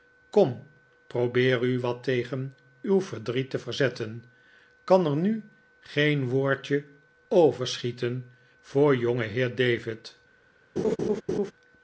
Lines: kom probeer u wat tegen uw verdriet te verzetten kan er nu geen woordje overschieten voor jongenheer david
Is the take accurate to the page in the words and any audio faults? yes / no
no